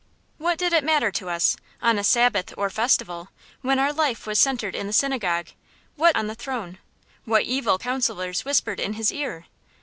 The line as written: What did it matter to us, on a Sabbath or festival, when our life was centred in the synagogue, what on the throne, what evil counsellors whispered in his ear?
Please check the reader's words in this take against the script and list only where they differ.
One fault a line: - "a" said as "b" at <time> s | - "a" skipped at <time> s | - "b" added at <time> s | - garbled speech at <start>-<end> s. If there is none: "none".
none